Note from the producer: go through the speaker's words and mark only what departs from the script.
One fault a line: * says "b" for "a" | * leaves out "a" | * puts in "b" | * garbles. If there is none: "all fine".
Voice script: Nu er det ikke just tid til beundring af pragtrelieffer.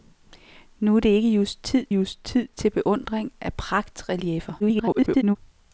* puts in "just tid"
* garbles